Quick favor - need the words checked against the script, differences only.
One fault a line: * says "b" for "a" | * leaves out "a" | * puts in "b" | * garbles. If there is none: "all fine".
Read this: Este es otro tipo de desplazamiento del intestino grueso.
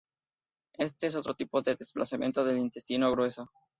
all fine